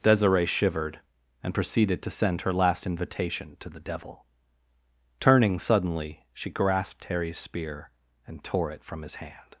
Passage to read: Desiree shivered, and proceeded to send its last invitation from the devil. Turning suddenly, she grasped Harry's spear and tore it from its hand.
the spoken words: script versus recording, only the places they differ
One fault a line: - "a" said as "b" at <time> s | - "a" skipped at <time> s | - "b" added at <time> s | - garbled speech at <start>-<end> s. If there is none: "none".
- "its" said as "her" at 2.4 s
- "from" said as "to" at 3.6 s
- "its" said as "his" at 9.0 s